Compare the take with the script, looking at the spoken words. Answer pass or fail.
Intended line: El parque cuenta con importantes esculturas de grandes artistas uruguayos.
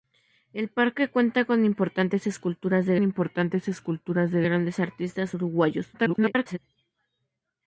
fail